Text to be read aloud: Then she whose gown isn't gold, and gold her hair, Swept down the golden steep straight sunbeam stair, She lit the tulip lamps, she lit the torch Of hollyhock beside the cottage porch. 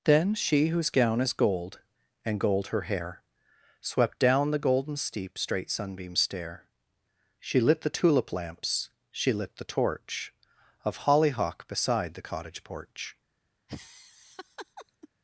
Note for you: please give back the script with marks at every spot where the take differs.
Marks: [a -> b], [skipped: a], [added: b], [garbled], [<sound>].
Then she whose gown [isn't -> is] gold, and gold her hair, Swept down the golden steep straight sunbeam stair, She lit the tulip lamps, she lit the torch Of hollyhock beside the cottage porch. [laugh]